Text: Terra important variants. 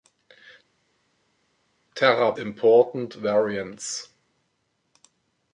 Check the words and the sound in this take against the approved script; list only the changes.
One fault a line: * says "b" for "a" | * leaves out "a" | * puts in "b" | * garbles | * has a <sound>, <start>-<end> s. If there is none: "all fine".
all fine